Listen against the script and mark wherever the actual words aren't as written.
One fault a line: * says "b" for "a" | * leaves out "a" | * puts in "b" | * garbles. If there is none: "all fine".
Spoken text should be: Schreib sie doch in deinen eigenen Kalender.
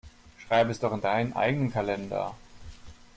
* says "es" for "sie"